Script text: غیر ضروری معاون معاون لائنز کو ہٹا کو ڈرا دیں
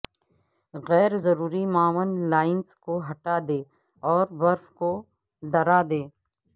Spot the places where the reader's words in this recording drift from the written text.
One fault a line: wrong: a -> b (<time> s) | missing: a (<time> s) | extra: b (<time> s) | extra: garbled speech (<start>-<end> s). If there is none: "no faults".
missing: معاون (2.1 s)
extra: دیں اور برف (3.5 s)